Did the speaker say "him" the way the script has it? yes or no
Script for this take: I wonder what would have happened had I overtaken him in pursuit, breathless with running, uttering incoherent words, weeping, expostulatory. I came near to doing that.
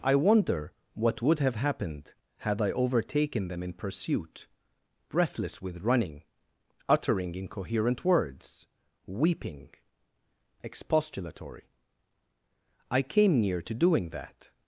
no